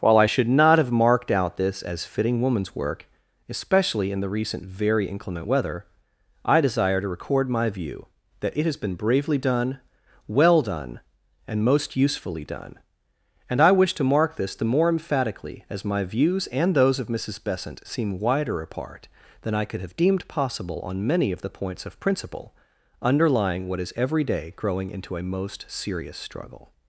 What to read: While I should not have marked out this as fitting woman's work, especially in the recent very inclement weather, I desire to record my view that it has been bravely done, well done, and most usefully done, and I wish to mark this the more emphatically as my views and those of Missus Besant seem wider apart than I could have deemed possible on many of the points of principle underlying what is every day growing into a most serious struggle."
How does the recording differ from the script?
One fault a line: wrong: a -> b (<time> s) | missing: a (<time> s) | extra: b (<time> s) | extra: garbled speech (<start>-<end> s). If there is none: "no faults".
no faults